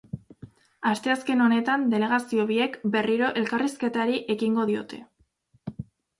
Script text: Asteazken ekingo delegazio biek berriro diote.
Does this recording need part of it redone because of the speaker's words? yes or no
yes